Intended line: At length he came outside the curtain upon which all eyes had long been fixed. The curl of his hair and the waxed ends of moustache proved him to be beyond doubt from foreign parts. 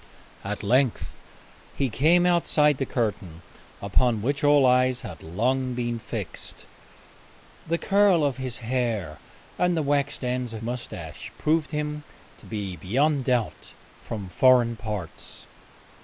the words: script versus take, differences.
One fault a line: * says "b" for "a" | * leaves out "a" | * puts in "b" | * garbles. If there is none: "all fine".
all fine